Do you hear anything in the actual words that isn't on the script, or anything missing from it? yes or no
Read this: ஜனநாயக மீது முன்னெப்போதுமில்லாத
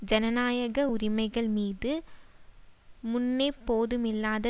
yes